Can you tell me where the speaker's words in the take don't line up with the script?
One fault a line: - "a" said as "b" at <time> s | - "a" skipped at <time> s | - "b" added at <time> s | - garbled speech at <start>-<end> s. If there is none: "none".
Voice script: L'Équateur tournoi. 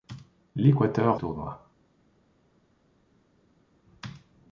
none